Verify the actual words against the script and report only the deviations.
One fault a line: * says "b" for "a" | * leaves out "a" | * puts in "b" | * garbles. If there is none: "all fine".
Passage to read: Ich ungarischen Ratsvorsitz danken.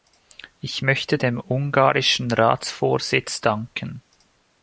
* puts in "möchte dem"